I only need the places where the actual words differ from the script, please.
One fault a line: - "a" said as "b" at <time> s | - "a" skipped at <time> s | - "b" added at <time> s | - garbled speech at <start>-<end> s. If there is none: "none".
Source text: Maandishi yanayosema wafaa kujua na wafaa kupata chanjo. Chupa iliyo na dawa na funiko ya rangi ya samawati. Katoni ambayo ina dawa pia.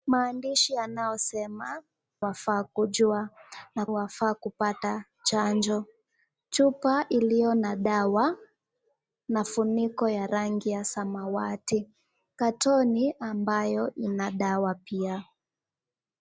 none